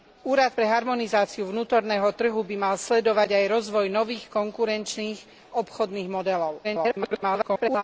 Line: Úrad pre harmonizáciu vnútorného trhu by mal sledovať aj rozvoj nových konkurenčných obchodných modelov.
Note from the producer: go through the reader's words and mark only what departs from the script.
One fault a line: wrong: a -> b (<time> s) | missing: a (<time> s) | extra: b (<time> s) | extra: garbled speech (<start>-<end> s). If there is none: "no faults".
extra: garbled speech (6.6-7.8 s)